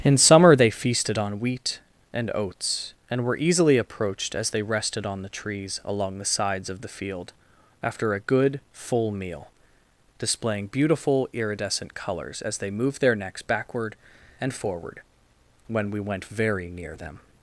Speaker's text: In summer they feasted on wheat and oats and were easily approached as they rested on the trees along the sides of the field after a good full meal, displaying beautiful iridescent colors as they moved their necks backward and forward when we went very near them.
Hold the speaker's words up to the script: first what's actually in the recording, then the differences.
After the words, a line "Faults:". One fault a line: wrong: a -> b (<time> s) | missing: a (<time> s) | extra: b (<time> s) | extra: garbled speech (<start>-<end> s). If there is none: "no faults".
In summer they feasted on wheat and oats and were easily approached as they rested on the trees along the sides of the field after a good full meal, displaying beautiful iridescent colors as they moved their necks backward and forward when we went very near them.
Faults:
no faults